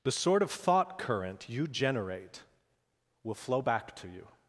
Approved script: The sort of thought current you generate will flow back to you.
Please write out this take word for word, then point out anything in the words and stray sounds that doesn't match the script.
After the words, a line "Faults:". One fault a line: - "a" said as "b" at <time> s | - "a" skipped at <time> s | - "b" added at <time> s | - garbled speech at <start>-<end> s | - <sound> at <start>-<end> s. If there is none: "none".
The sort of thought current you generate will flow back to you.
Faults:
none